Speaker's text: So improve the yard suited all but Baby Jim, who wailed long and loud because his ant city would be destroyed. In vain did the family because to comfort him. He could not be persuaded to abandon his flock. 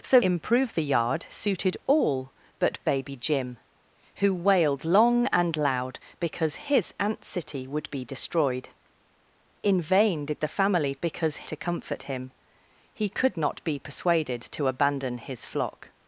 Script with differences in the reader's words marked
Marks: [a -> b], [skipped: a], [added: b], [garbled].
So improve the yard suited all but Baby Jim, who wailed long and loud because his ant city would be destroyed. In vain did the family because to comfort him. He could not be persuaded to abandon his flock.